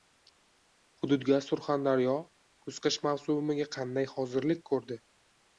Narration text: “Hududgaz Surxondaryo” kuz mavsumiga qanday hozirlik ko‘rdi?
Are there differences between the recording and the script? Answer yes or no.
yes